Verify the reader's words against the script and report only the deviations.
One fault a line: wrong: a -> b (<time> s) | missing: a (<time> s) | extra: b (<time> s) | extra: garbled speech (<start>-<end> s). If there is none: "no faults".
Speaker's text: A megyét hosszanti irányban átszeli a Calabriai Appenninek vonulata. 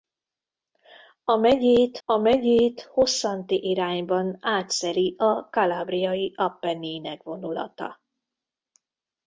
extra: a megyét (2.0 s)